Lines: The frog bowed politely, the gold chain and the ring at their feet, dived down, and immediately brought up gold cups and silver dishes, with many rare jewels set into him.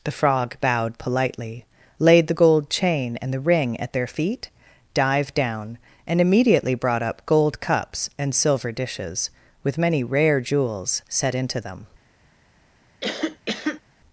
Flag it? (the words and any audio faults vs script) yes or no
yes